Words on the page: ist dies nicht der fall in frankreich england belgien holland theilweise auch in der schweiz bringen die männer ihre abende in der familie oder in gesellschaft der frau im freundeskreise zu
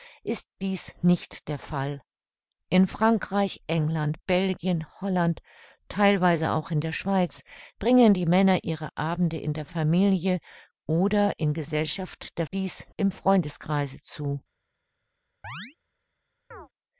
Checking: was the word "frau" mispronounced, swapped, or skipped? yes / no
yes